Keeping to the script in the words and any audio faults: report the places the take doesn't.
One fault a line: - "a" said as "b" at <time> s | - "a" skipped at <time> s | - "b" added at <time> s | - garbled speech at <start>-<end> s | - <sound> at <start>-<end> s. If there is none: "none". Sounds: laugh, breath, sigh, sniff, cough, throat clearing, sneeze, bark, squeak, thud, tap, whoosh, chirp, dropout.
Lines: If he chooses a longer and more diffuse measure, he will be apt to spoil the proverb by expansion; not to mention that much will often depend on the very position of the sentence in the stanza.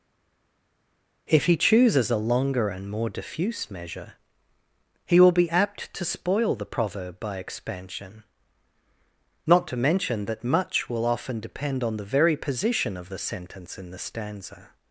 none